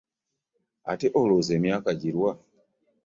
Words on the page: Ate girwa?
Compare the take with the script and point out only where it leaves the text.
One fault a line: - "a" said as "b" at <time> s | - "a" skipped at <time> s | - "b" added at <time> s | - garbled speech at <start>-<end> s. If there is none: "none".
- "olowooza emyaka" added at 1.2 s